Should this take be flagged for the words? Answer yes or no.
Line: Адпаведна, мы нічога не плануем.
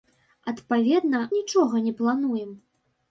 yes